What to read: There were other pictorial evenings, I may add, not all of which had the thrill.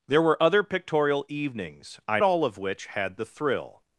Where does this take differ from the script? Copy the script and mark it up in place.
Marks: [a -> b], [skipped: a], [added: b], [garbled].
There were other pictorial evenings, I [skipped: may add, not] all of which had the thrill.